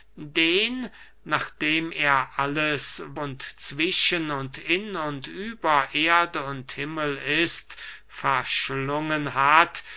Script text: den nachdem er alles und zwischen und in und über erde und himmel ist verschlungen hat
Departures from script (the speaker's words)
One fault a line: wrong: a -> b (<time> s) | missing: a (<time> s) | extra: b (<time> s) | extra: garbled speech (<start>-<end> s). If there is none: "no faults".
no faults